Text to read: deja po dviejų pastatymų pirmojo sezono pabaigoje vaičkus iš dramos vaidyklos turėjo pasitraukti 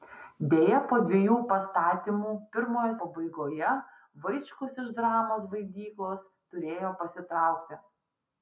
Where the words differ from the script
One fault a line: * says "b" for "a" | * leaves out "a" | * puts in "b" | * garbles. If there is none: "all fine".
* leaves out "sezono"